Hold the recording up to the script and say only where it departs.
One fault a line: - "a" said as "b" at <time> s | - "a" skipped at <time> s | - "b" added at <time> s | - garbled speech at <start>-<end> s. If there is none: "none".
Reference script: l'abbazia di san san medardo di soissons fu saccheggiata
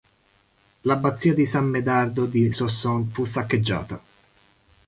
- "san" skipped at 1.6 s